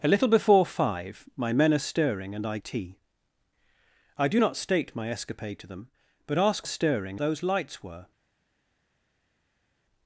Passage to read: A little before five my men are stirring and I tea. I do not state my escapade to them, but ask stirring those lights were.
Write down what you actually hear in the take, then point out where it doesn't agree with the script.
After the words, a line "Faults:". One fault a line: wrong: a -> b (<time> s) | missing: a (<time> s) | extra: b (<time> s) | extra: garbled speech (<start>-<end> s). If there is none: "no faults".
A little before five my men are stirring and I tea. I do not state my escapade to them, but ask stirring those lights were.
Faults:
no faults